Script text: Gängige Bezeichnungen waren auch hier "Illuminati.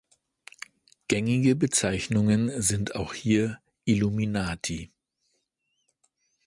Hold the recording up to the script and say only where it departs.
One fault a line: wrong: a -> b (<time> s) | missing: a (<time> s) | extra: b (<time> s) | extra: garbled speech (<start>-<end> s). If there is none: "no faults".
wrong: waren -> sind (2.6 s)